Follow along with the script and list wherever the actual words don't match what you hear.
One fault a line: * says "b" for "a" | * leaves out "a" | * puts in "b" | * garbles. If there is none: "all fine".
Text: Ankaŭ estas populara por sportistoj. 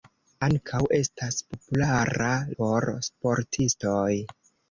all fine